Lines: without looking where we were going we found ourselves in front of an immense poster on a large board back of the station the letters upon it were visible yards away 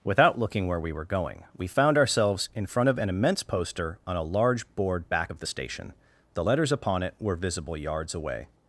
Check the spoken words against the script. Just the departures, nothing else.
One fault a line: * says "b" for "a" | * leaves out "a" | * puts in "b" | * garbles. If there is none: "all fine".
all fine